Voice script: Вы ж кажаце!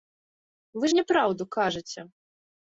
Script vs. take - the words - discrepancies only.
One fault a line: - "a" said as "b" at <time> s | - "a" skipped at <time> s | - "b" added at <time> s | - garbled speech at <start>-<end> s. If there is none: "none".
- "няпраўду" added at 1.0 s